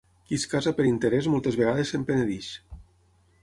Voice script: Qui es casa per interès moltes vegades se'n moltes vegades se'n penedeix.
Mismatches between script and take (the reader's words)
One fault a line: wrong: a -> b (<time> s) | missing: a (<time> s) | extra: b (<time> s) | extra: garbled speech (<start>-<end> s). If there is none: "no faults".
missing: moltes vegades se'n (2.1 s)